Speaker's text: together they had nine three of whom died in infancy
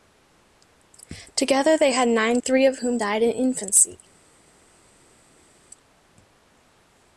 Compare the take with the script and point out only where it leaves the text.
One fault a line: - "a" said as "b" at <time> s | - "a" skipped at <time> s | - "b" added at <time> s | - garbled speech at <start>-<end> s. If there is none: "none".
none